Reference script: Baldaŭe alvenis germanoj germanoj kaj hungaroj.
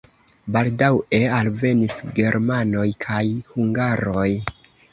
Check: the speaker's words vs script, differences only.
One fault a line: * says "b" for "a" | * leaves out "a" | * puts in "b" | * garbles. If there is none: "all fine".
* leaves out "germanoj"